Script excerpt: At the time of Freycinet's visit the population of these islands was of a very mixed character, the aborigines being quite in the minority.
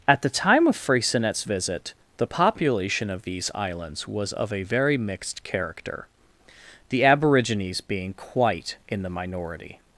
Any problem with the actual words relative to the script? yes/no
no